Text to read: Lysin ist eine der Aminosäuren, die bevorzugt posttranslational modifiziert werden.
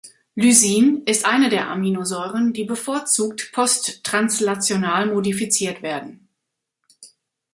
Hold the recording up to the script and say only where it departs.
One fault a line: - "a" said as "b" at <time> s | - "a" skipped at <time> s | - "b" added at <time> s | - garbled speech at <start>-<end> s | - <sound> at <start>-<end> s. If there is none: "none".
none